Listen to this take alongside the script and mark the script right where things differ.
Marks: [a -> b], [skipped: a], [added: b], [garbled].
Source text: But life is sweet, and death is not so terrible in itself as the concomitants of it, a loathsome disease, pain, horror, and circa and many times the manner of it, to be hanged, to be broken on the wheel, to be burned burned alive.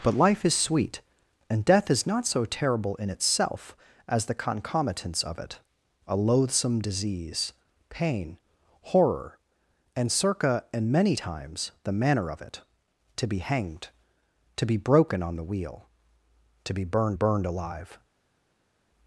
But life is sweet, and death is not so terrible in itself as the concomitants of it, a loathsome disease, pain, horror, and circa and many times the manner of it, to be hanged, to be broken on the wheel, to be burned burned alive.